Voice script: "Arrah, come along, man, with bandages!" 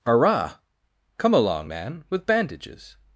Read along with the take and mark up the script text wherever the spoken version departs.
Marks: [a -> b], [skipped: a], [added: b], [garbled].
"Arrah, come along, man, with bandages!"